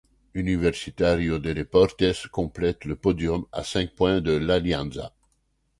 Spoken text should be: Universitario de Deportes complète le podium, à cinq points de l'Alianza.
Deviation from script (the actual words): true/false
false